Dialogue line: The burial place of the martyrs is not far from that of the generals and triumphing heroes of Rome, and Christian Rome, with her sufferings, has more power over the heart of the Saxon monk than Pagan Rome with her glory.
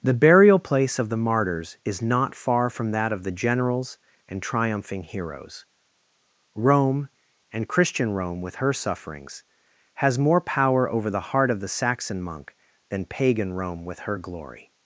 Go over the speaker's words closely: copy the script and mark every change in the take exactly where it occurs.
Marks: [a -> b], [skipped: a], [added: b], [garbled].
The burial place of the martyrs is not far from that of the generals and triumphing heroes [skipped: of] Rome, and Christian Rome, with her sufferings, has more power over the heart of the Saxon monk than Pagan Rome with her glory.